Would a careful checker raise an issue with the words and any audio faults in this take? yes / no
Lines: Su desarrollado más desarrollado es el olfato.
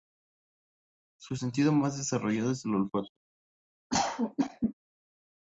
yes